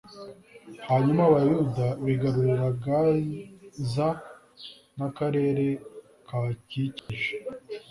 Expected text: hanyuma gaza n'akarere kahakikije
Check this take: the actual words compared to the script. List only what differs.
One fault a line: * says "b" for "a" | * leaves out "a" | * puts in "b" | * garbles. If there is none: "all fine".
* puts in "abayuda bigarurira"